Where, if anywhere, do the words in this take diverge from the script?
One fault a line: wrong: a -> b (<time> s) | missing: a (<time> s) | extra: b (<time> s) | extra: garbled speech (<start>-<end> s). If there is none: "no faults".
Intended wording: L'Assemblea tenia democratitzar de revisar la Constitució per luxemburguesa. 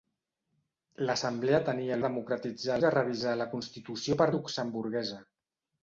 no faults